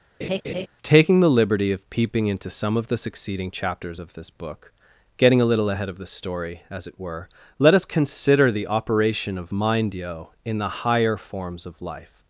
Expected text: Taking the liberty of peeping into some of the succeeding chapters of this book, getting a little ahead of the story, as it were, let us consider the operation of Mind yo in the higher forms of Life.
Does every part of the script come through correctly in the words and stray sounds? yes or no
no